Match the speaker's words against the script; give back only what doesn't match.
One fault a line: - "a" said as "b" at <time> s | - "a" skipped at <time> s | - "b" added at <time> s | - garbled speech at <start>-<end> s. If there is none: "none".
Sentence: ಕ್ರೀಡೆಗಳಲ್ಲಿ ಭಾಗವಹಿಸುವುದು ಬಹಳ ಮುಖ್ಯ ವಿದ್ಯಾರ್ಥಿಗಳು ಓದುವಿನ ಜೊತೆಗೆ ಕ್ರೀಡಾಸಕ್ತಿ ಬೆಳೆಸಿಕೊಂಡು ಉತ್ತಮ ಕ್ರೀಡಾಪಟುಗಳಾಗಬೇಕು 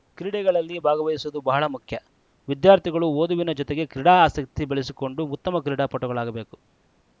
none